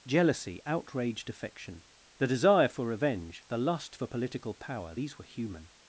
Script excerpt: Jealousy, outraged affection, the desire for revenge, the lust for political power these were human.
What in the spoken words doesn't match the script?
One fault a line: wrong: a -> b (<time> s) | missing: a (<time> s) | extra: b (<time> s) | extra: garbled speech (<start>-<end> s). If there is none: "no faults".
no faults